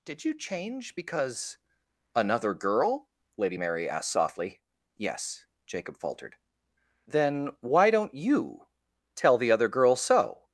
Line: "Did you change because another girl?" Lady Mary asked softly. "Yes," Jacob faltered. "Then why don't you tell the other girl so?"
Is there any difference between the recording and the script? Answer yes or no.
no